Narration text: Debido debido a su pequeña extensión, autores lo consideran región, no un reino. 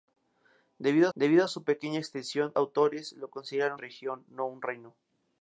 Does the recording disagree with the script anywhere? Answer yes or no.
no